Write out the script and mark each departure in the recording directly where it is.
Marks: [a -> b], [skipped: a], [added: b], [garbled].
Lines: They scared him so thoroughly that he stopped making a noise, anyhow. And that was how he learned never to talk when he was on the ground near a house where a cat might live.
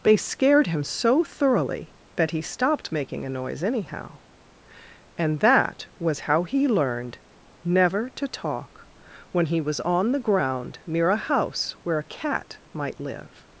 They scared him so thoroughly that he stopped making a noise, anyhow. And that was how he learned never to talk when he was on the ground near a house where a cat might live.